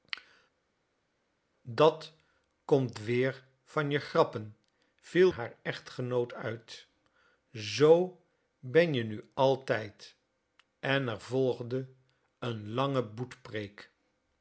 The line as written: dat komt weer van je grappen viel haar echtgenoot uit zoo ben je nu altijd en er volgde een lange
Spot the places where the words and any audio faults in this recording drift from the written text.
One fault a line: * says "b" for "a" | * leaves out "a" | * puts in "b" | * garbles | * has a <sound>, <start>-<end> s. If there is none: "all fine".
all fine